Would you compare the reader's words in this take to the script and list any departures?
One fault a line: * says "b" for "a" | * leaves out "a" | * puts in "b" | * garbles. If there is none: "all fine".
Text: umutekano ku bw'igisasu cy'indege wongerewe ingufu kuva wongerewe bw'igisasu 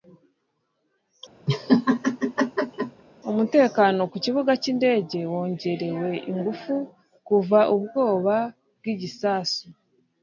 * says "kibuga" for "bw'igisasu"
* says "ubwoba" for "wongerewe"